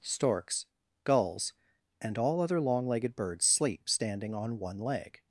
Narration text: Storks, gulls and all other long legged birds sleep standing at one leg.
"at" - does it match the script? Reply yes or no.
no